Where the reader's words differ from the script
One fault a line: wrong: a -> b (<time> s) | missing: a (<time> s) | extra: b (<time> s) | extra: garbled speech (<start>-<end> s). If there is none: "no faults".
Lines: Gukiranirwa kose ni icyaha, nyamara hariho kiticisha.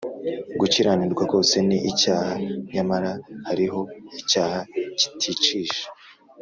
extra: icyaha (4.2 s)